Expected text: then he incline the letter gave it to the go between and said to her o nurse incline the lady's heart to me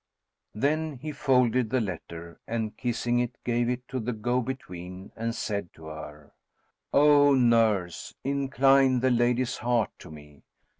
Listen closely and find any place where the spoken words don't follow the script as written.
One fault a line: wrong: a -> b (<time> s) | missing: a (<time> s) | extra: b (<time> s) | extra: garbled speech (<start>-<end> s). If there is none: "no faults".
wrong: incline -> folded (1.1 s)
extra: and kissing it (2.5 s)